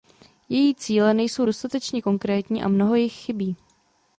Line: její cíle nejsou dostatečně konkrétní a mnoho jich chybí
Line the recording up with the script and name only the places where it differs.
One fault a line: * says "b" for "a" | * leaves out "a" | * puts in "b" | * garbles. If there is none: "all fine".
all fine